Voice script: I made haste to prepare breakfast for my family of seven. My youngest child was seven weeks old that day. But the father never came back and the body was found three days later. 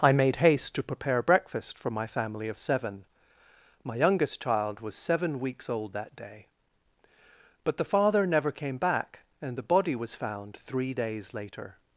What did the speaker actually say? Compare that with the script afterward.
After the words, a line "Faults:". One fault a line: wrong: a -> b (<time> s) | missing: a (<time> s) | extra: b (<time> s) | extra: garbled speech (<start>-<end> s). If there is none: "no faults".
I made haste to prepare breakfast for my family of seven. My youngest child was seven weeks old that day. But the father never came back and the body was found three days later.
Faults:
no faults